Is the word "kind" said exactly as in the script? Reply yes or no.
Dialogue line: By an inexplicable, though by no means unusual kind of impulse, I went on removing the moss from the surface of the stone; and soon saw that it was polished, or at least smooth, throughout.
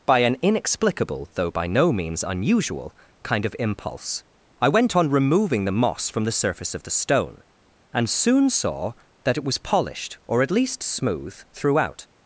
yes